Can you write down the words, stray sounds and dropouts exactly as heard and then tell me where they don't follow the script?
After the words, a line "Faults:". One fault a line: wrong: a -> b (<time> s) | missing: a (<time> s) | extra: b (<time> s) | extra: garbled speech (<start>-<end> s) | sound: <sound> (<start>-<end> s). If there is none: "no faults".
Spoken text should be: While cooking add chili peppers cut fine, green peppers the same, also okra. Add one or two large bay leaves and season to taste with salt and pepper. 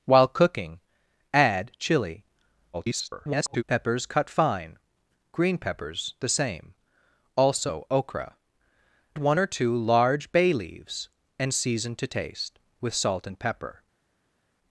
While cooking add chili [garbled] peppers cut fine, green peppers the same, also okra. One or two large bay leaves and season to taste with salt and pepper.
Faults:
extra: garbled speech (2.7-3.6 s)
missing: Add (8.3 s)